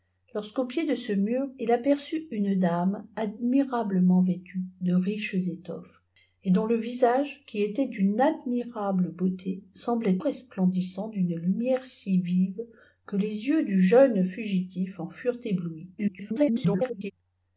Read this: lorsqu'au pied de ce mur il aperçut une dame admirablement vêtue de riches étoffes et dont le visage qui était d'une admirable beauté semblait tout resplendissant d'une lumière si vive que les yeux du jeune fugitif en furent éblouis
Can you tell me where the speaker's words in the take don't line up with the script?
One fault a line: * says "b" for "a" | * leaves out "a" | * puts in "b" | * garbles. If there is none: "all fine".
* leaves out "tout"
* garbles